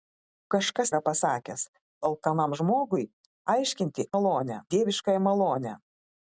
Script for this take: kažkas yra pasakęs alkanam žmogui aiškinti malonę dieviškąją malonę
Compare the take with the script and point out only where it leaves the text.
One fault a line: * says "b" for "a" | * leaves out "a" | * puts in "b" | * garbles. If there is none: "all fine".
all fine